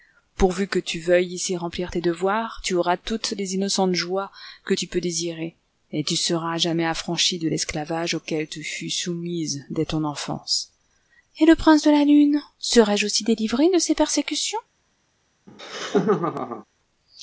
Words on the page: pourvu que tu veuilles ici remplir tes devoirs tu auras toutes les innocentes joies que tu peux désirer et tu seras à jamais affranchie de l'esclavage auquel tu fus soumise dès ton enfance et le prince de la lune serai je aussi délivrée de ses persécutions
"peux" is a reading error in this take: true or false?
false